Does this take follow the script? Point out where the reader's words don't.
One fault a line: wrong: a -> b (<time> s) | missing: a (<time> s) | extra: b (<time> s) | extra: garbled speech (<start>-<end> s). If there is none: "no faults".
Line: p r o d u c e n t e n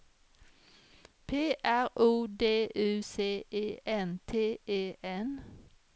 no faults